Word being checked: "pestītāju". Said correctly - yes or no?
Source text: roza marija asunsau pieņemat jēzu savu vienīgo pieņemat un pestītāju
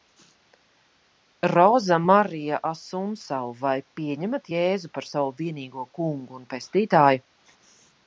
yes